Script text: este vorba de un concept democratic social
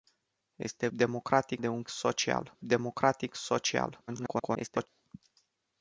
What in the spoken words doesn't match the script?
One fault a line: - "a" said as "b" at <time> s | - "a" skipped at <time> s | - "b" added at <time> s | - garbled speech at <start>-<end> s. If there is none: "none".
- "vorba" said as "democratic" at 0.9 s
- "concept" said as "social" at 1.9 s
- garbled speech at 4.1-4.9 s